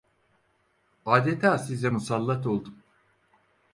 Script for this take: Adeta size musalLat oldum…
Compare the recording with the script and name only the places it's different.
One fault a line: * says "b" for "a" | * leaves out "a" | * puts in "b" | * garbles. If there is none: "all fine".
all fine